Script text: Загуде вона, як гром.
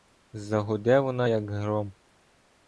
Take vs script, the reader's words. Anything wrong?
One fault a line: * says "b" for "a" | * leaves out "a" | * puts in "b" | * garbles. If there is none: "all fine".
all fine